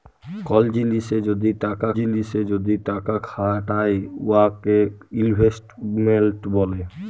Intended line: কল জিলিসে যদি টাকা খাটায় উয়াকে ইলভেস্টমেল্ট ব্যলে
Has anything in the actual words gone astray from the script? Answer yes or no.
yes